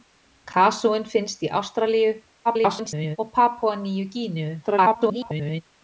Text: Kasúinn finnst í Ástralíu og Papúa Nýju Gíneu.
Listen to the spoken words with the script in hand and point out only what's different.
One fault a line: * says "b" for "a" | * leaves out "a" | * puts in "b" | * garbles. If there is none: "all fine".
* garbles
* garbles